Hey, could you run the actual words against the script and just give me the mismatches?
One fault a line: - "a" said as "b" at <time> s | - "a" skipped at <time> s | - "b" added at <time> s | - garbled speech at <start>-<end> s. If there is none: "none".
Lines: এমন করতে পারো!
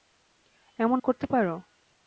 none